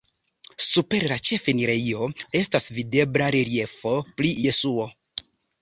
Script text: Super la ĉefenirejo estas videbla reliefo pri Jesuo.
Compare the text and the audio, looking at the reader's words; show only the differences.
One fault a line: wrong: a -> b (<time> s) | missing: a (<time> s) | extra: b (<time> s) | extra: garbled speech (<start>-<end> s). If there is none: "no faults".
no faults